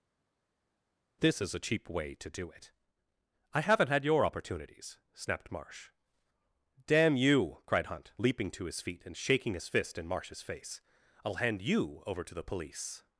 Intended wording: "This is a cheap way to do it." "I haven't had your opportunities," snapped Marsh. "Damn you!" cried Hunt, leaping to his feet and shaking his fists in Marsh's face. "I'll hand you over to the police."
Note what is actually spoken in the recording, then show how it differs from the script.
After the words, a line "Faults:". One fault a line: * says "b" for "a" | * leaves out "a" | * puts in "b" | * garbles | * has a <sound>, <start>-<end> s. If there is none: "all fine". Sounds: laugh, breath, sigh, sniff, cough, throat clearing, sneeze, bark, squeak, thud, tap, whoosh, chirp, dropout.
"This is a cheap way to do it." "I haven't had your opportunities," snapped Marsh. "Damn you!" cried Hunt, leaping to his feet and shaking his fist in Marsh's face. "I'll hand you over to the police."
Faults:
* says "fist" for "fists"